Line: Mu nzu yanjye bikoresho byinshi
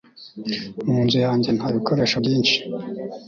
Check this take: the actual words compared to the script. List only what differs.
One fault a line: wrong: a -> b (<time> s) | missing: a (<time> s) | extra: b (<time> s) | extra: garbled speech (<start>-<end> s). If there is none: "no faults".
extra: nta (1.6 s)